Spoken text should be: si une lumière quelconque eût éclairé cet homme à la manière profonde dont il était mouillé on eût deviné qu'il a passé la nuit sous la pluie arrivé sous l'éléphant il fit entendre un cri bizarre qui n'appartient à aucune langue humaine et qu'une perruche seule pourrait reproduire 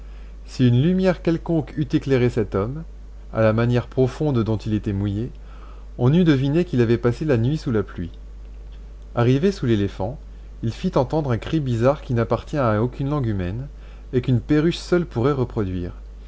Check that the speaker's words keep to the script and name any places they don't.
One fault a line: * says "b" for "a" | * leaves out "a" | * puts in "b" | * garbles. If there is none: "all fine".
* says "avait" for "a"